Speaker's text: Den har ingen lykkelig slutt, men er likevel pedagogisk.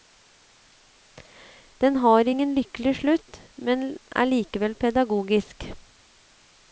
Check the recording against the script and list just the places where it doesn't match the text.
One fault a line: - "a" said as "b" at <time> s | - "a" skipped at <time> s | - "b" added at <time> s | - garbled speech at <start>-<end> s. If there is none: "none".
none